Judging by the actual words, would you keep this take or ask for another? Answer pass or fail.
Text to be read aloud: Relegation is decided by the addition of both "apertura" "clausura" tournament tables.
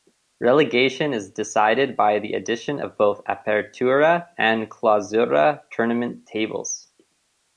fail